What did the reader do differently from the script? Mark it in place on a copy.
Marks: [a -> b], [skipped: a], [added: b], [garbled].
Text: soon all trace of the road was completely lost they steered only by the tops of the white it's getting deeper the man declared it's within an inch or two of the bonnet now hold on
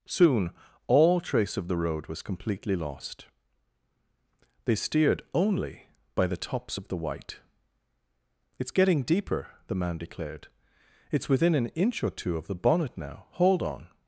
soon all trace of the road was completely lost they steered only by the tops of the white it's getting deeper the man declared it's within an inch or two of the bonnet now hold on